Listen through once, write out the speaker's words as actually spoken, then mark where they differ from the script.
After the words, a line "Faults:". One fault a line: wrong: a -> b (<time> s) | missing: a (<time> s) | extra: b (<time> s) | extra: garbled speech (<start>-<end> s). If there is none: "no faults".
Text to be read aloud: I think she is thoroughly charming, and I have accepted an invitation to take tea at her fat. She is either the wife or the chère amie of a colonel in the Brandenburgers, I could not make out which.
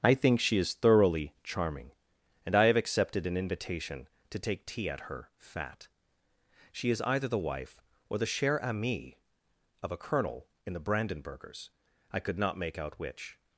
I think she is thoroughly charming, and I have accepted an invitation to take tea at her fat. She is either the wife or the chère amie of a colonel in the Brandenburgers, I could not make out which.
Faults:
no faults